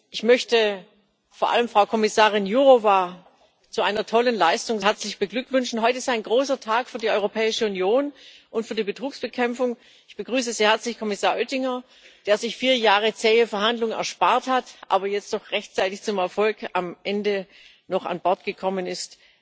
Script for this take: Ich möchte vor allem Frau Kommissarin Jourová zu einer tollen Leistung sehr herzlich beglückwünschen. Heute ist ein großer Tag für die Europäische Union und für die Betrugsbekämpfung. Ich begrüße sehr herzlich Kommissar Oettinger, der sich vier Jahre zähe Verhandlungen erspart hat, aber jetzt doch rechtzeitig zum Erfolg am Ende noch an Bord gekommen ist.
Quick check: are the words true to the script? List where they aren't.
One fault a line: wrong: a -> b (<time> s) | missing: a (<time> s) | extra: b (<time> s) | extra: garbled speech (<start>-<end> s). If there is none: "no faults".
missing: sehr (4.8 s)